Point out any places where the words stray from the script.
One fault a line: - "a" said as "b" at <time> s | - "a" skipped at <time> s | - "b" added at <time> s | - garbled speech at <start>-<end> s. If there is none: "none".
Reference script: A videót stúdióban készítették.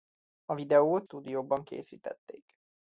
none